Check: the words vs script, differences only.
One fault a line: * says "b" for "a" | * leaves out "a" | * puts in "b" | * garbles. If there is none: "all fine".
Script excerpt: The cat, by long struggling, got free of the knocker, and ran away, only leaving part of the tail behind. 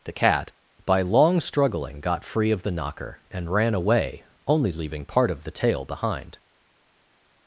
all fine